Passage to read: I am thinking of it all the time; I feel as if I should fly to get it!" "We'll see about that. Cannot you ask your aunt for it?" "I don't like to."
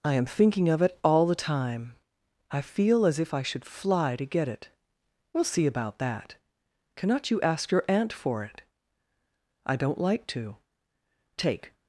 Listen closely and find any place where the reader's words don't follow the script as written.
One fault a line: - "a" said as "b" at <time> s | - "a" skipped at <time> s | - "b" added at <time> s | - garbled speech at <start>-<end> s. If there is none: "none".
- "Take" added at 11.4 s